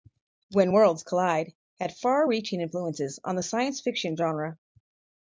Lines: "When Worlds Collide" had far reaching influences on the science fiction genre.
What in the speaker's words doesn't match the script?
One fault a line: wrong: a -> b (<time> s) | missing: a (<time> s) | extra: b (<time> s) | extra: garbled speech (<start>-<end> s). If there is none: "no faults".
no faults